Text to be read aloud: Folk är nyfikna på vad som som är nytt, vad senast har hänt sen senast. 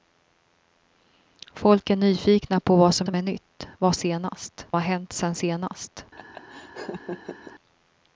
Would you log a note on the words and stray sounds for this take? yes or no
yes